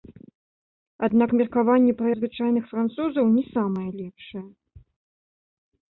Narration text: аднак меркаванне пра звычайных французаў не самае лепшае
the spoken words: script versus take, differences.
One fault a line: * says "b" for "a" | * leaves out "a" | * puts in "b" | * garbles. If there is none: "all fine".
all fine